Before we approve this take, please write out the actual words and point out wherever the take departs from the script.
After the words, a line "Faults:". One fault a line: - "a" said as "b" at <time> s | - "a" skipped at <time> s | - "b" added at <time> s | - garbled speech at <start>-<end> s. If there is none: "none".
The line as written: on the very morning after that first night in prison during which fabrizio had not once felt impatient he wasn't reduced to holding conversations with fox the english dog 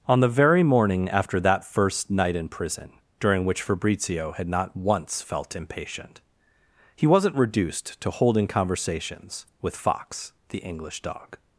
on the very morning after that first night in prison during which fabrizio had not once felt impatient he wasn't reduced to holding conversations with fox the english dog
Faults:
none